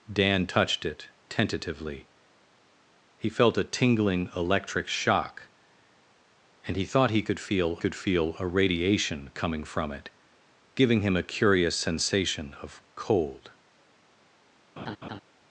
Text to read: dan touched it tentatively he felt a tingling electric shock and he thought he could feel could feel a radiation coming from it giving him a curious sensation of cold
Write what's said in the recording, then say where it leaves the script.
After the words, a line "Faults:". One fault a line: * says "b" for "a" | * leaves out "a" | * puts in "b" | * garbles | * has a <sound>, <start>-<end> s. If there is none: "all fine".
dan touched it tentatively he felt a tingling electric shock and he thought he could feel could feel a radiation coming from it giving him a curious sensation of cold
Faults:
* has a laugh, 14.8-15.2 s